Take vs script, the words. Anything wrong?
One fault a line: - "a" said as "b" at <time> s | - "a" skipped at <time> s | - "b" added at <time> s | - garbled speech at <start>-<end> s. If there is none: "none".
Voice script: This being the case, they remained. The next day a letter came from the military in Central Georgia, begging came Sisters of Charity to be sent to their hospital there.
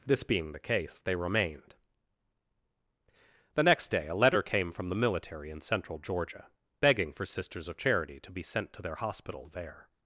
- "came" said as "for" at 7.1 s